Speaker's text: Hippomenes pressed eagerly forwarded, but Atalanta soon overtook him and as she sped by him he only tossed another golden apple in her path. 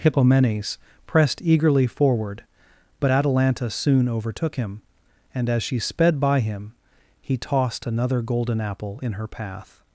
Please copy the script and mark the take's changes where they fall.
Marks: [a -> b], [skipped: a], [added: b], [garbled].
Hippomenes pressed eagerly [forwarded, -> forward] but Atalanta soon overtook him and as she sped by him he [skipped: only] tossed another golden apple in her path.